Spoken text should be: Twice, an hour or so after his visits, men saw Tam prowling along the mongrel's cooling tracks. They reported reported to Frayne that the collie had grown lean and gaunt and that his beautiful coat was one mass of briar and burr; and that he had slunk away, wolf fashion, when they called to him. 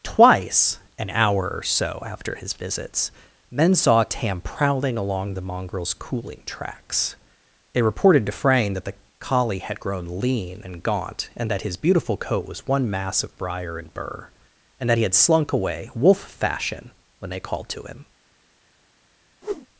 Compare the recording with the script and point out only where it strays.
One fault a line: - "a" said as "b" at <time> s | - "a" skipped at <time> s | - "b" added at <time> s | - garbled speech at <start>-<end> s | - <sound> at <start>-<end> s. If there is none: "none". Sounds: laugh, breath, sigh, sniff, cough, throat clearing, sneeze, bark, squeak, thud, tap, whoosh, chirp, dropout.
- "reported" skipped at 8.2 s
- whoosh at 19.4-19.7 s